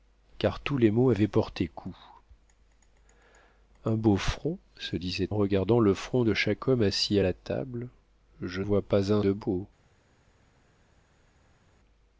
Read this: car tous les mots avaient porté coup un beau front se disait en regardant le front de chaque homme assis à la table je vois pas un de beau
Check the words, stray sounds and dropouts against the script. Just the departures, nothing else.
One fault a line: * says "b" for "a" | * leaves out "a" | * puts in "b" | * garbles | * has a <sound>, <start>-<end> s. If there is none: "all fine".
all fine